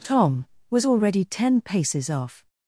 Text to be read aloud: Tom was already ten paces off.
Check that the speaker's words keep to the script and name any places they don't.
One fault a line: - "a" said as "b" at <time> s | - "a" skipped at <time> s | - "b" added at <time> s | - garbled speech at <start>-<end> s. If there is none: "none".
none